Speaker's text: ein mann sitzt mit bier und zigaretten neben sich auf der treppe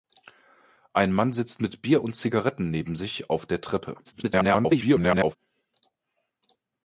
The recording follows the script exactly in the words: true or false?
false